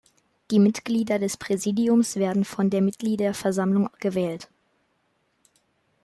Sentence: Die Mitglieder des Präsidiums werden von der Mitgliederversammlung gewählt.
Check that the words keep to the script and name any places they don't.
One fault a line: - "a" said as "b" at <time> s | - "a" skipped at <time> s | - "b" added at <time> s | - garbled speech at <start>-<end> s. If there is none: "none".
none